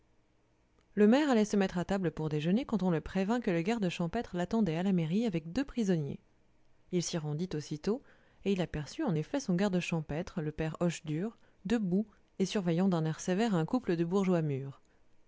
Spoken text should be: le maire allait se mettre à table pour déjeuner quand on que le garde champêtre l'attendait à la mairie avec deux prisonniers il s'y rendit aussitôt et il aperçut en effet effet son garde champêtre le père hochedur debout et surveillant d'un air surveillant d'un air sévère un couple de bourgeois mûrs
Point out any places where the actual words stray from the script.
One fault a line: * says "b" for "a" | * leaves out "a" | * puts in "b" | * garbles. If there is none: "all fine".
* puts in "le prévint"
* leaves out "effet"
* leaves out "surveillant d'un air"